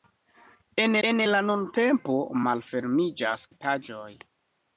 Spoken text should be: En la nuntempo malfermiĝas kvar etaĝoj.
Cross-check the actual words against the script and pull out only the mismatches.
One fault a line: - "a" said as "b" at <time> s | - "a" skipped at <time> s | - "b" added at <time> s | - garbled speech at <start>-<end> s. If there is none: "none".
- "en" added at 1.1 s
- "kvar" skipped at 3.5 s